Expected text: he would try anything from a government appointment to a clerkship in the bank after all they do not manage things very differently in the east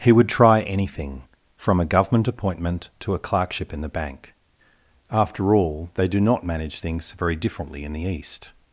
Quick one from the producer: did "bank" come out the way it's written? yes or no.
yes